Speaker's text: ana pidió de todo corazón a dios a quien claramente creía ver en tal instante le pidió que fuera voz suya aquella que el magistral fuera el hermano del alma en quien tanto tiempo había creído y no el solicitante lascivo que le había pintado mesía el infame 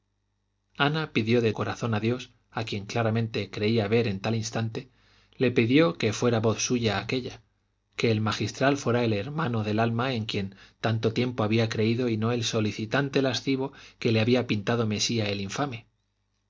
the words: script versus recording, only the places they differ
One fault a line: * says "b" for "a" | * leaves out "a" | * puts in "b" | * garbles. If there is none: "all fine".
* leaves out "todo"